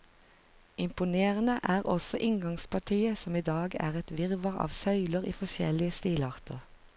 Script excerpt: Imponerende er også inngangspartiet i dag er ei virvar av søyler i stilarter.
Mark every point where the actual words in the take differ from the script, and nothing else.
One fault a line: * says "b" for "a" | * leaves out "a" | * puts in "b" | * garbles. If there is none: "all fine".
* puts in "som"
* says "et" for "ei"
* puts in "forskjellige"